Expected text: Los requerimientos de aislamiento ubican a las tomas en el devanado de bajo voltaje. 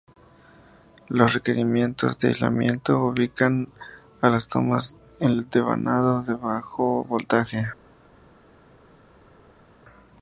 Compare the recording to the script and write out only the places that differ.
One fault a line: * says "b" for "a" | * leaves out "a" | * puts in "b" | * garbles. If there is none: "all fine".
all fine